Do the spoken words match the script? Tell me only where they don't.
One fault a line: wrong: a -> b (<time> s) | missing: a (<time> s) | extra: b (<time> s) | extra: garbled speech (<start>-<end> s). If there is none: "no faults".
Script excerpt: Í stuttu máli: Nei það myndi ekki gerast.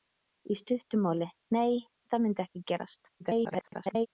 extra: garbled speech (3.2-4.1 s)